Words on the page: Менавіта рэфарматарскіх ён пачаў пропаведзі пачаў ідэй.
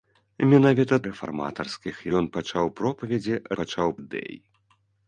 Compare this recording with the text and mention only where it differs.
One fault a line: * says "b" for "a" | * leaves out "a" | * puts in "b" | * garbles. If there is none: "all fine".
all fine